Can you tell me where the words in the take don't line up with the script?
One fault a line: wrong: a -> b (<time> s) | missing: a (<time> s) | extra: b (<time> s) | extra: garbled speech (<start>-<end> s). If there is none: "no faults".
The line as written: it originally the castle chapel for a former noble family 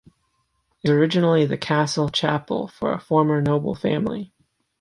no faults